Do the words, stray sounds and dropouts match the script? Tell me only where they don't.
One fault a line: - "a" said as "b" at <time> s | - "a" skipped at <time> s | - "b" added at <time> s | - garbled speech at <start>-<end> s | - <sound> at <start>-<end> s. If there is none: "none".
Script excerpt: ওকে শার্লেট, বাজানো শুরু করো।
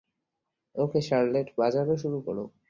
none